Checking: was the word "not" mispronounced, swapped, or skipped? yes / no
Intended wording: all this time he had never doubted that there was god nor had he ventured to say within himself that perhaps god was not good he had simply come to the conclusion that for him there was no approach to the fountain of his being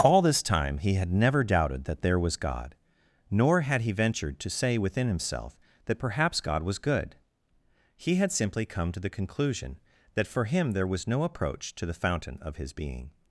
yes